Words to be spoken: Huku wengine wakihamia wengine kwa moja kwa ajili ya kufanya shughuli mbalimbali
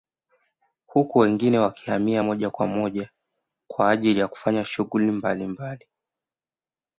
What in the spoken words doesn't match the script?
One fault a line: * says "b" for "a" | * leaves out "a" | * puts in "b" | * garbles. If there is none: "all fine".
* says "moja" for "wengine"